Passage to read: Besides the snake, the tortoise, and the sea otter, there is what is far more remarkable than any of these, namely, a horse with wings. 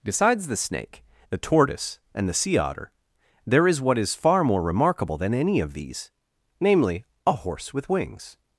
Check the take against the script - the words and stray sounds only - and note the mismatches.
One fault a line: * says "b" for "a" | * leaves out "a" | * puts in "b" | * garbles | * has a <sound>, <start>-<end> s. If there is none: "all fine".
all fine